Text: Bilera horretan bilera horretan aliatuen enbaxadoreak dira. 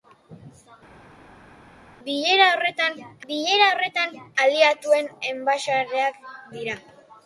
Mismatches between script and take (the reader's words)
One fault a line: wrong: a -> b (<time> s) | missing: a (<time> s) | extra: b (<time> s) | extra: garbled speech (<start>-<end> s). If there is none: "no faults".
no faults